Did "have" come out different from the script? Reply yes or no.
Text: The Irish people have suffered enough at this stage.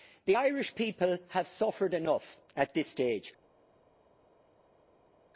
no